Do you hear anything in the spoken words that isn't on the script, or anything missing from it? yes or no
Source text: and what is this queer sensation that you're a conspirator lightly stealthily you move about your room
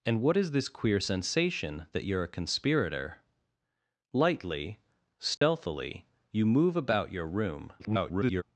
yes